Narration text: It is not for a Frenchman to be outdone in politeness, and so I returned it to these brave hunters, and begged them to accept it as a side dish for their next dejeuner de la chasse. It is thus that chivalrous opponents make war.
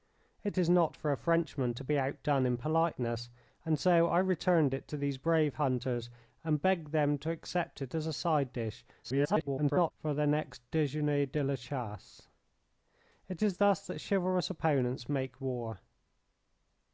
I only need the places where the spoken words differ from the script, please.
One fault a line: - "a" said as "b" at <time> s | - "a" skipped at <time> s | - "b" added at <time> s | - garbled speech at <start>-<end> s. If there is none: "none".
- garbled speech at 9.0-9.9 s